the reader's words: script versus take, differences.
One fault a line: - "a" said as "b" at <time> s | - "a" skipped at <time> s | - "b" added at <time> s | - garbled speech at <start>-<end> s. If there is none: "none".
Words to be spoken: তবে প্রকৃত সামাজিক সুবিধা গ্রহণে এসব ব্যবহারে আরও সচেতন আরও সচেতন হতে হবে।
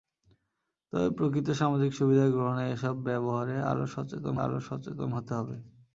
none